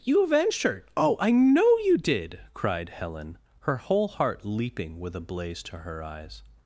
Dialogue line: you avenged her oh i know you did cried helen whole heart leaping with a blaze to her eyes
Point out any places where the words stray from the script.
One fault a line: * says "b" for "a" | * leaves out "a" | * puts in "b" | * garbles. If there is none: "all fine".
* puts in "her"